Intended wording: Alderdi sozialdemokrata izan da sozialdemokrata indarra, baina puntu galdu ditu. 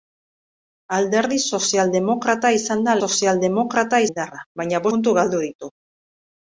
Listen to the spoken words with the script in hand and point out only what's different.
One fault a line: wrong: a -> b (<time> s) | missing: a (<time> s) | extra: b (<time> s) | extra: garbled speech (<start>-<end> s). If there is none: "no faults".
no faults